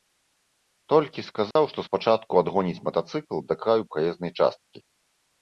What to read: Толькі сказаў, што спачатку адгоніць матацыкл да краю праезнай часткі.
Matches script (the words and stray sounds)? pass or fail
fail